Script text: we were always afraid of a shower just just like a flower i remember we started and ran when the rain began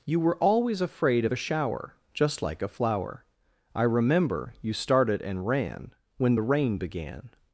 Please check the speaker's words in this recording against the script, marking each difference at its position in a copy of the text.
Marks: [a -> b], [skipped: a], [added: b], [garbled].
[we -> you] were always afraid of a shower just [skipped: just] like a flower i remember [we -> you] started and ran when the rain began